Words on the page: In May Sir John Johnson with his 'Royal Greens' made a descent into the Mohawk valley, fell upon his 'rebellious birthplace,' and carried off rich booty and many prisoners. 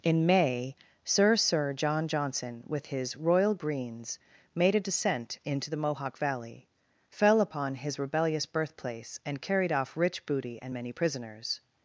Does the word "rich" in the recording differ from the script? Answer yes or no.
no